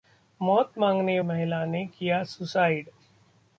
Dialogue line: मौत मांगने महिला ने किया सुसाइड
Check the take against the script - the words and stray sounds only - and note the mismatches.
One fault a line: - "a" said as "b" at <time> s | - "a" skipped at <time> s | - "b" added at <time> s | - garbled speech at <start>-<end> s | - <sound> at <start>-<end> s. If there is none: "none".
none